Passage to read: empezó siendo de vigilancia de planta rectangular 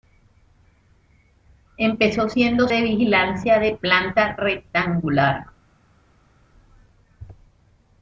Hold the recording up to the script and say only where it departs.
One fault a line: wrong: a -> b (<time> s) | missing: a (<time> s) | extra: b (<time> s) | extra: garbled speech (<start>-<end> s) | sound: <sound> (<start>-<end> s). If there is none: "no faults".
no faults